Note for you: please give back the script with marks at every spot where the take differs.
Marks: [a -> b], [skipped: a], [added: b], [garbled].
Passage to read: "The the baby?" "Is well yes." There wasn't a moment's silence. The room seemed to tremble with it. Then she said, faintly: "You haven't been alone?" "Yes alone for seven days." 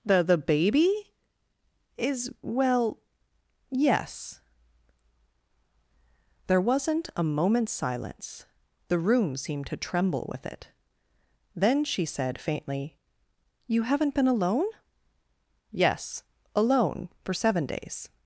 "The the baby?" "Is well yes." There wasn't a moment's silence. The room seemed to tremble with it. Then she said, faintly: "You haven't been alone?" "Yes alone for seven days."